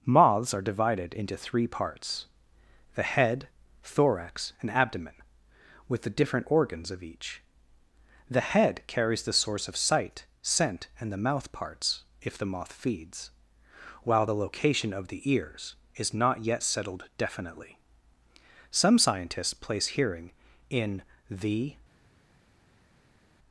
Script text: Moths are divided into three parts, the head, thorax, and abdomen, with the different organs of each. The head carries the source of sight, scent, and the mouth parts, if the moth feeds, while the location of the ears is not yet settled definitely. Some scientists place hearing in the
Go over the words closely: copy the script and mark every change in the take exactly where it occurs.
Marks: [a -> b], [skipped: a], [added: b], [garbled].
Moths are divided into three parts, the head, thorax, and abdomen, with the different organs of each. The head carries the source of sight, scent, and the mouth parts, if the moth feeds, while the location of the ears is not yet settled definitely. Some scientists place hearing in the